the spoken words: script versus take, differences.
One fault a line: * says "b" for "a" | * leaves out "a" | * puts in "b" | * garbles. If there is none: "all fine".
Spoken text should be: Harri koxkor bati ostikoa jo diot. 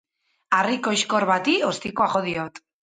all fine